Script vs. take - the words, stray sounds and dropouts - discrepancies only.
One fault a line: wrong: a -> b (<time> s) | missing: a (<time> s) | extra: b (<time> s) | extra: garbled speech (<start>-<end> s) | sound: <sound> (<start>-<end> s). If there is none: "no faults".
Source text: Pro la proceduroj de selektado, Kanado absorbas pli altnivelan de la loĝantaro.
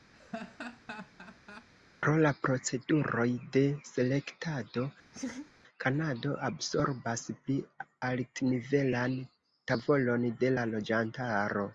sound: laugh (0.1-1.7 s)
sound: laugh (5.1-5.5 s)
extra: tavolon (9.7 s)